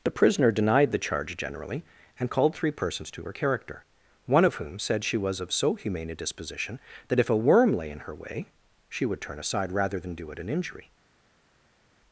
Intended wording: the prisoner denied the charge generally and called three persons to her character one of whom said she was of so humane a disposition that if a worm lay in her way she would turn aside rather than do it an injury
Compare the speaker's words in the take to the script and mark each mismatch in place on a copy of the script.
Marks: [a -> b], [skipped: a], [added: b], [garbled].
the prisoner denied the charge generally and called three persons to her character one of whom said she was of so humane a disposition that if a worm lay in her way she would turn aside rather than do it an injury